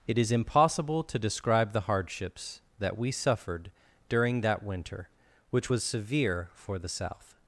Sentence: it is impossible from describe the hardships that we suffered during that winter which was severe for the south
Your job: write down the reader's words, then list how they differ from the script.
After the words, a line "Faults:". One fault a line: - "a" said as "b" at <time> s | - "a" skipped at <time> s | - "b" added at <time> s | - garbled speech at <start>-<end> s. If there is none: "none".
it is impossible to describe the hardships that we suffered during that winter which was severe for the south
Faults:
- "from" said as "to" at 1.0 s